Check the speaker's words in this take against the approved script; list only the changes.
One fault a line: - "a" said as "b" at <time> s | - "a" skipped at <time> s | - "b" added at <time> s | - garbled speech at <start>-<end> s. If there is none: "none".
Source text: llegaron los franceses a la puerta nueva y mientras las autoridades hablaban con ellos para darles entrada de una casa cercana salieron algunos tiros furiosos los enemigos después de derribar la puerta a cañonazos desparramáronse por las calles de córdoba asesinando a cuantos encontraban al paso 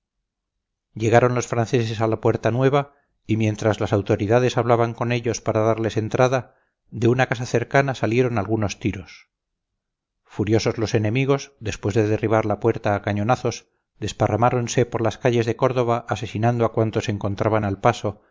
none